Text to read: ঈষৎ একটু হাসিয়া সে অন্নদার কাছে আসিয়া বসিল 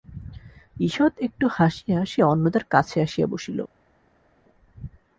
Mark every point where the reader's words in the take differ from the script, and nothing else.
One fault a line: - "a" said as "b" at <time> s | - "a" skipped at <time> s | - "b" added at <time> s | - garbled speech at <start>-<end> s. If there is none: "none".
none